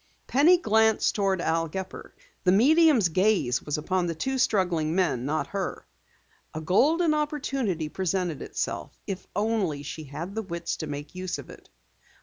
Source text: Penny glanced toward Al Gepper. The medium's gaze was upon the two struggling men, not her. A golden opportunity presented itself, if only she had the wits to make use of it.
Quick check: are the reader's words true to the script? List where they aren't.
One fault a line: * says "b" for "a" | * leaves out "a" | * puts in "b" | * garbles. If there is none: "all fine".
all fine